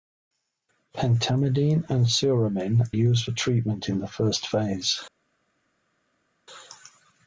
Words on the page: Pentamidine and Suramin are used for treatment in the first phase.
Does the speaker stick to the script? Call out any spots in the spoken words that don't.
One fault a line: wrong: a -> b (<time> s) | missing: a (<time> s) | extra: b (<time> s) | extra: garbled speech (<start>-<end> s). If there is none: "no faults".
missing: are (2.9 s)